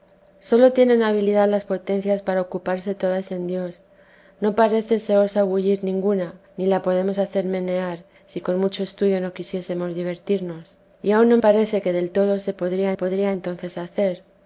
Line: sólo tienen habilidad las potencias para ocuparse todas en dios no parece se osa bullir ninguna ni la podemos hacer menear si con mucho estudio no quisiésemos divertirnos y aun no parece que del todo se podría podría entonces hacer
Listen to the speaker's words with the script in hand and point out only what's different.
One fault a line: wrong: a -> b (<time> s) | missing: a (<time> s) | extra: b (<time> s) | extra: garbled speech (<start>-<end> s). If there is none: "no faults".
no faults